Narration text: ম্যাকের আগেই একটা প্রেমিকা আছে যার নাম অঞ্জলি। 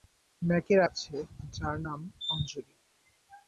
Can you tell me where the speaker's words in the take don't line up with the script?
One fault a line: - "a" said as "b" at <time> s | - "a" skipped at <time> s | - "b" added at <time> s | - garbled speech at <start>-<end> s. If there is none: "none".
- "আগেই একটা প্রেমিকা" skipped at 0.8 s